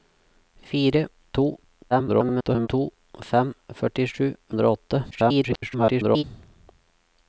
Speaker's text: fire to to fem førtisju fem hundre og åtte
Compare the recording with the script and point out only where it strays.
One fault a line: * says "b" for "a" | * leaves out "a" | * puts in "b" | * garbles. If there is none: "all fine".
* garbles
* leaves out "fem"
* garbles